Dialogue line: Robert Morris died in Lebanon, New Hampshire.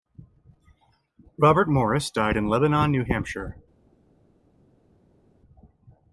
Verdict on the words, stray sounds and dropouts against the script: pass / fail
pass